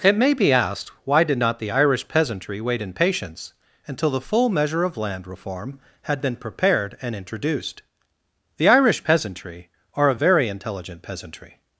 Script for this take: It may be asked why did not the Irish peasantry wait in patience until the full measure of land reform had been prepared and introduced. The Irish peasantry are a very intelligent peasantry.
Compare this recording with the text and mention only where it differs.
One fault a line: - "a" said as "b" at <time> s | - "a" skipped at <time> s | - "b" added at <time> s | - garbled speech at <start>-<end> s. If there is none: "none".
none